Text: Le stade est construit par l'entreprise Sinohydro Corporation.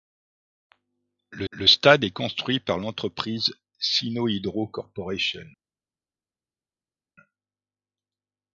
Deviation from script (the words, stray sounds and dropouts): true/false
true